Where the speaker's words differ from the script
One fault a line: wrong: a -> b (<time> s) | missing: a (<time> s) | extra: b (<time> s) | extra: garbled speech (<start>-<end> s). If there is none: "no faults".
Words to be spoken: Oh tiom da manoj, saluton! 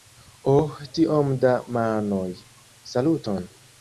no faults